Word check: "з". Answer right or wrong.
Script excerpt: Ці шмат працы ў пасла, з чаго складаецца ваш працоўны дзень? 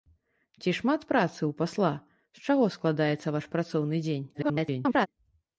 right